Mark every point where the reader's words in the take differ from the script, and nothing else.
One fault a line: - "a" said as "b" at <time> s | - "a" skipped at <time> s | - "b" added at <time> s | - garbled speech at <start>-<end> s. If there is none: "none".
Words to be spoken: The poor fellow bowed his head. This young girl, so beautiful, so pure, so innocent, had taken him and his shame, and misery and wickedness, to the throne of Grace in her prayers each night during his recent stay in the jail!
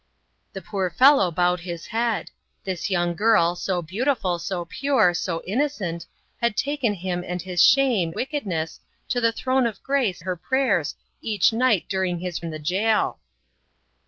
- "and misery and" skipped at 8.2 s
- "in" skipped at 10.2 s
- "recent stay" skipped at 12.4 s